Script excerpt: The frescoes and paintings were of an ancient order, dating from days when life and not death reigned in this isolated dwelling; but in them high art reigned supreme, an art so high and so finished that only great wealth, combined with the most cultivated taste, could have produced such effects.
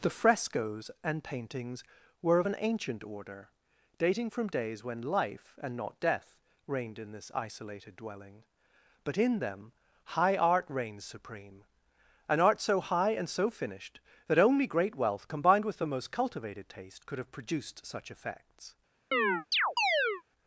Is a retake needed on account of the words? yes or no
yes